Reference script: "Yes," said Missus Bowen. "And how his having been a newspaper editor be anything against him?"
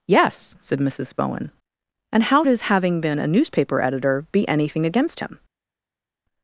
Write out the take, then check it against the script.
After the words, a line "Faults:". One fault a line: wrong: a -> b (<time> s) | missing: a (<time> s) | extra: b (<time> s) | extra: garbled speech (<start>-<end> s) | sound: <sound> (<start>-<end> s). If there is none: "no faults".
"Yes," said Missus Bowen. "And how his having been a newspaper editor be anything against him?"
Faults:
no faults